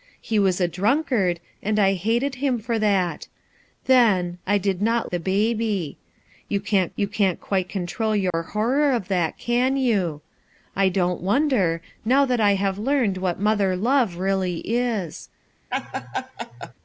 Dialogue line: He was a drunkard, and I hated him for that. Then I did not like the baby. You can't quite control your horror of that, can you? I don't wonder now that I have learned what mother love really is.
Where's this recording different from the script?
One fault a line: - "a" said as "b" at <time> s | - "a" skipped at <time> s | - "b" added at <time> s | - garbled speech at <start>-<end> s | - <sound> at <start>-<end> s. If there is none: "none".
- "like" skipped at 5.1 s
- "you can't" added at 7.0 s
- dropout at 8.3-8.3 s
- laugh at 15.7-16.7 s